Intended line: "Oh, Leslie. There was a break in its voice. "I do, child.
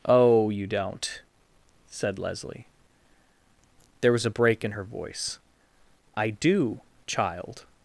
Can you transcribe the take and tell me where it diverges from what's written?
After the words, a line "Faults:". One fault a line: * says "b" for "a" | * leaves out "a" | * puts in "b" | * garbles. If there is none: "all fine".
"Oh, you don't," said Leslie. There was a break in her voice. "I do, child.
Faults:
* puts in "you don't said"
* says "her" for "its"